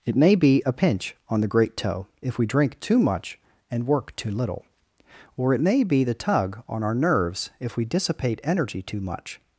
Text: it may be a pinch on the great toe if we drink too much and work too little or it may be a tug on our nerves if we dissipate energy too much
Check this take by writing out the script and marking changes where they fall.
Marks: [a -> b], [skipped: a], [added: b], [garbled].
it may be a pinch on the great toe if we drink too much and work too little or it may be [a -> the] tug on our nerves if we dissipate energy too much